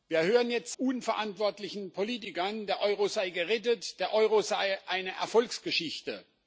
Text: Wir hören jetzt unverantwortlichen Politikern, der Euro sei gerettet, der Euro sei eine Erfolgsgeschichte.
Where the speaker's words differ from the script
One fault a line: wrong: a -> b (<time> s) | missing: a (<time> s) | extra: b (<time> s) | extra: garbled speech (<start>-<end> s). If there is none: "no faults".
no faults